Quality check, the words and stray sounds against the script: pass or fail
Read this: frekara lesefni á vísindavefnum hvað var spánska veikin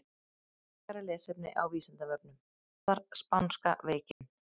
fail